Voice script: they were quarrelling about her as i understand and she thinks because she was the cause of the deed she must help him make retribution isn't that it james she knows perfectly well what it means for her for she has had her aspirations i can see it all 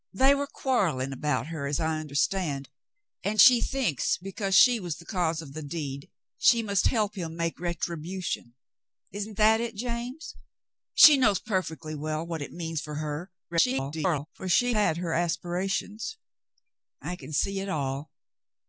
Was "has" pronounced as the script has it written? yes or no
no